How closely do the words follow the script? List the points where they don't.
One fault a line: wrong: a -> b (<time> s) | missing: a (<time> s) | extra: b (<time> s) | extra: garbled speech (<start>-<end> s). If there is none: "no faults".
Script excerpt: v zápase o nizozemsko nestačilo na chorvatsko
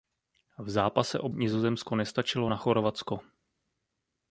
no faults